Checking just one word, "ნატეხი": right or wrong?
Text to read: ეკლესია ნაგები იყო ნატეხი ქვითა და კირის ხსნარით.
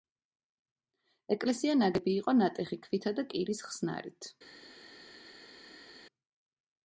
right